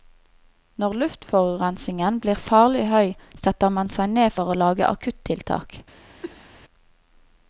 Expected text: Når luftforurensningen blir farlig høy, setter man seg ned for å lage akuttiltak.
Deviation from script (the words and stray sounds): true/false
true